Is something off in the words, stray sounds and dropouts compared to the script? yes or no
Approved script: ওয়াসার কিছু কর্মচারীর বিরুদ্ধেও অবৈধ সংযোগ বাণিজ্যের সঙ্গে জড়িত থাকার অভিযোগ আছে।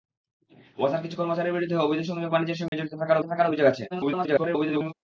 yes